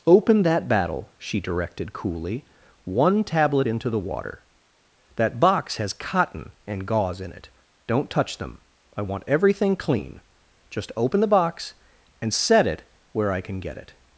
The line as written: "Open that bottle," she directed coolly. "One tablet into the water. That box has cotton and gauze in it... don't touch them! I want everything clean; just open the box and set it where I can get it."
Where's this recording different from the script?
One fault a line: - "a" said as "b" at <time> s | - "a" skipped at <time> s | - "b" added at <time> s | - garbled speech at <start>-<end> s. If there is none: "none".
- "bottle" said as "battle" at 0.7 s